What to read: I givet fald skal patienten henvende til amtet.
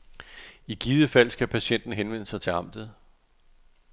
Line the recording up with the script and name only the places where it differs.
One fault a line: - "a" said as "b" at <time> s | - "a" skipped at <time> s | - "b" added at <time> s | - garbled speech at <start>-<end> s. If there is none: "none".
- "sig" added at 2.3 s